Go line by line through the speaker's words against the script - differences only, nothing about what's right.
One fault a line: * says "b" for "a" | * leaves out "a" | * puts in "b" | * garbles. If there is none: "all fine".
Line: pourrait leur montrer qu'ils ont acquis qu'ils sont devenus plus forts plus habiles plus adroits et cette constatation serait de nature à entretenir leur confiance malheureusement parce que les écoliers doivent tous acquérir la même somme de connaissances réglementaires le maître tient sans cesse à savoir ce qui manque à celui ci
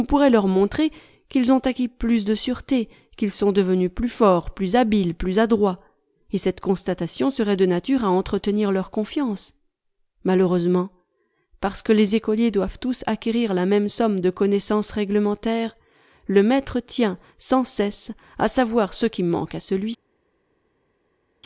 * puts in "plus de sûreté"